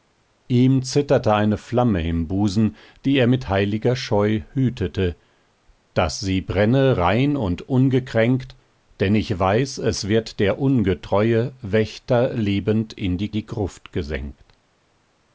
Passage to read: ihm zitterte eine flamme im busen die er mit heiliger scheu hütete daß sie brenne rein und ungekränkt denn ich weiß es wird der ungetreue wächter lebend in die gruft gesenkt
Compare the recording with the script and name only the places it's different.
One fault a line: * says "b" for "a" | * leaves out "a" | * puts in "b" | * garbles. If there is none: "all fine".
* puts in "die"